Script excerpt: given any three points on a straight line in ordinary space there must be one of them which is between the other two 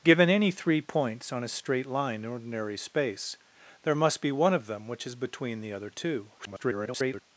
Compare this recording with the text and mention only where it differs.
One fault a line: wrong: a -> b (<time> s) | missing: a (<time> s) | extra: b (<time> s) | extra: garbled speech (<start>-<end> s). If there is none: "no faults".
extra: garbled speech (6.4-7.2 s)